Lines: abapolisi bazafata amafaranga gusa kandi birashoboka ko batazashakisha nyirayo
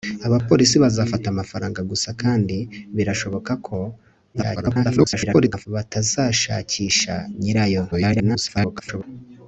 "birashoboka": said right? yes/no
yes